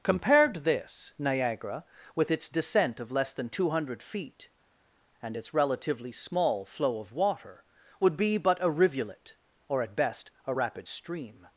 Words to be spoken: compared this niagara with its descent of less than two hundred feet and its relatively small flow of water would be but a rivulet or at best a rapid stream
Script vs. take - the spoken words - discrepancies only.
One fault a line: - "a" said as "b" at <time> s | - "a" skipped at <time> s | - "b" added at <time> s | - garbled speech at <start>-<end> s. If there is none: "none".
none